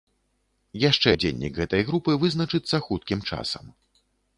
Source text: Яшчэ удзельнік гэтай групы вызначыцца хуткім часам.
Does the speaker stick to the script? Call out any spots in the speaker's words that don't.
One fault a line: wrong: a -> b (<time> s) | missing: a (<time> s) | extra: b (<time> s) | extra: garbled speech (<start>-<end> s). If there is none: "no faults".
no faults